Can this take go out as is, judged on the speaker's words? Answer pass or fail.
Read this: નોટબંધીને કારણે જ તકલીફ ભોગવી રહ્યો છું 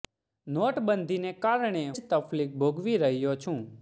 pass